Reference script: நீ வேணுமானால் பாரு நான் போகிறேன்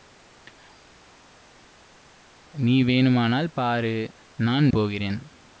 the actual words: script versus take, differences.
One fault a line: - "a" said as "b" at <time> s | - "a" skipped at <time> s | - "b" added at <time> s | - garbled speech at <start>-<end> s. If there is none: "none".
none